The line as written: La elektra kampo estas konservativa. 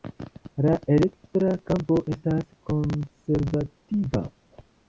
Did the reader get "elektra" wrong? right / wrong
right